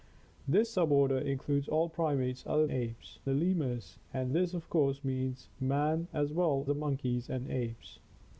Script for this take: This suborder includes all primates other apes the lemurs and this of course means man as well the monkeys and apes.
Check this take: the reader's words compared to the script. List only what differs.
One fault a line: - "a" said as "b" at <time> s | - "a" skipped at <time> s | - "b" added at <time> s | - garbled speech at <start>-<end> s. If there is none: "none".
none